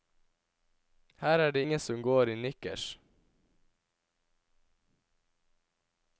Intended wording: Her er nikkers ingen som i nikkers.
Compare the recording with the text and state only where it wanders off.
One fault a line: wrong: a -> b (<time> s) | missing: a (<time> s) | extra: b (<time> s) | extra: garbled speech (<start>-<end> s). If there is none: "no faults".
wrong: nikkers -> det (1.5 s)
extra: går (2.0 s)